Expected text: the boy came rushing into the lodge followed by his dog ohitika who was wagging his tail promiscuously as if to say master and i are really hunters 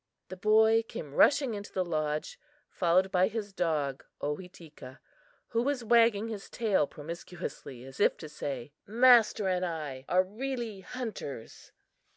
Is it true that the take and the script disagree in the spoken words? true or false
false